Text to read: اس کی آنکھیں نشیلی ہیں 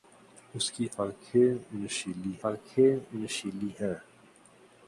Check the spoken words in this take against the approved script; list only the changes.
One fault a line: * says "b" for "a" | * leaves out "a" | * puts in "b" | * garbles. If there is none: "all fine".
* puts in "آنکھیں نشیلی"